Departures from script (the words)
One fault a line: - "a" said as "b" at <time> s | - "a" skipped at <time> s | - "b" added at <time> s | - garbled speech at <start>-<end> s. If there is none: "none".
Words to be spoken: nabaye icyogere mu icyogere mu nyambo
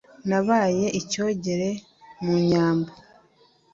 - "icyogere mu" skipped at 2.3 s